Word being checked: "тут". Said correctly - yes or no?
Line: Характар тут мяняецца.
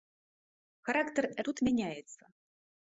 yes